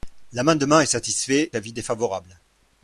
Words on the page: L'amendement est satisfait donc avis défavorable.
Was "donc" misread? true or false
true